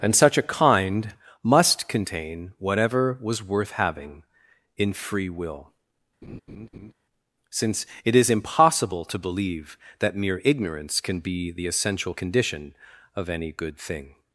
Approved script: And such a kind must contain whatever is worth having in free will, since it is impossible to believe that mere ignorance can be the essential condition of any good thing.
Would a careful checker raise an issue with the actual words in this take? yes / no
yes